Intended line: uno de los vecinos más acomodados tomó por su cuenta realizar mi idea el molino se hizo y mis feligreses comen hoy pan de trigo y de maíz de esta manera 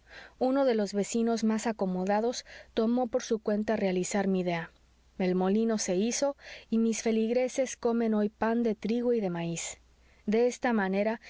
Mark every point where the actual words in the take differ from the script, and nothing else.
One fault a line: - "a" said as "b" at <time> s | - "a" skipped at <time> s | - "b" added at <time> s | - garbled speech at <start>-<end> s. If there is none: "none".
none